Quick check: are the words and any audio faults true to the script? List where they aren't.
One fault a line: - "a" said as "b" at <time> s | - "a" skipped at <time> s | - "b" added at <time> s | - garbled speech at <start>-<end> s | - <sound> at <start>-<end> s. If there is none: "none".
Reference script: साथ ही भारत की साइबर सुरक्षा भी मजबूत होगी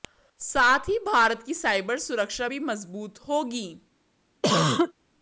- cough at 4.4-4.9 s